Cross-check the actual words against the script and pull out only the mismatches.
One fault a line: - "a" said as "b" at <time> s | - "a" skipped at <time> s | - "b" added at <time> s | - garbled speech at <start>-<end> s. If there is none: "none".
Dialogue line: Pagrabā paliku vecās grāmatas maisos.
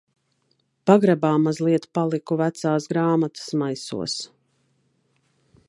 - "mazliet" added at 1.4 s